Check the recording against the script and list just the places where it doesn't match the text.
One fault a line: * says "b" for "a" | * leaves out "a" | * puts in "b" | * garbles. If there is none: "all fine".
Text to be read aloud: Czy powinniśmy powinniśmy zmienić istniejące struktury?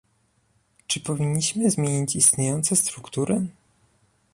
* leaves out "powinniśmy"